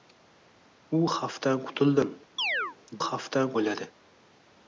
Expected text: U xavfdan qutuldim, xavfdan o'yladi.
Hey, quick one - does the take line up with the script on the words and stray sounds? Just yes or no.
no